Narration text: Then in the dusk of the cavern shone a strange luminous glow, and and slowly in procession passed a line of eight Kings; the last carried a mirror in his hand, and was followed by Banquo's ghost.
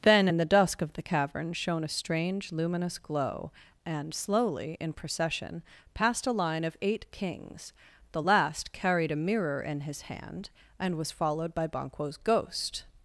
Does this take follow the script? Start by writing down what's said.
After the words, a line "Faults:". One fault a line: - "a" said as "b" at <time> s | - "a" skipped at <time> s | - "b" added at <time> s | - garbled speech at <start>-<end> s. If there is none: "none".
Then in the dusk of the cavern shone a strange luminous glow, and slowly in procession passed a line of eight Kings; the last carried a mirror in his hand, and was followed by Banquo's ghost.
Faults:
- "and" skipped at 4.1 s